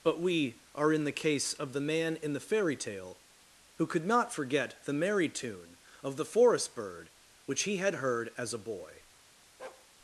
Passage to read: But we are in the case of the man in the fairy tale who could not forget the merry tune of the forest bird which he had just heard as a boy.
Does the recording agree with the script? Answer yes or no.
no